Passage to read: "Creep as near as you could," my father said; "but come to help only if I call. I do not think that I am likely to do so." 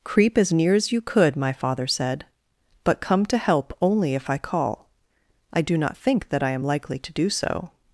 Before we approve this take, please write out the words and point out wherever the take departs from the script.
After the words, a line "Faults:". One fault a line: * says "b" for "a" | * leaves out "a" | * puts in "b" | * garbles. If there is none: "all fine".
"Creep as near as you could," my father said; "but come to help only if I call. I do not think that I am likely to do so."
Faults:
all fine